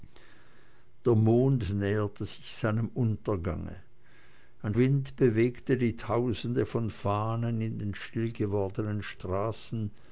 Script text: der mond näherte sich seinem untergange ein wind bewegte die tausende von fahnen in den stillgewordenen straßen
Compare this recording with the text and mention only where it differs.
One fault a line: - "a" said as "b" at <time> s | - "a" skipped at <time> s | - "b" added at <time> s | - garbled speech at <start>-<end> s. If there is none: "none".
none